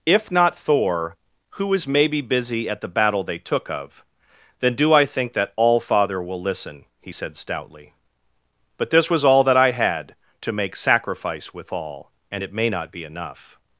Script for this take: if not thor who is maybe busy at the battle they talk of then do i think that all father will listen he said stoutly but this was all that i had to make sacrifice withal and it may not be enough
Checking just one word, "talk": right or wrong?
wrong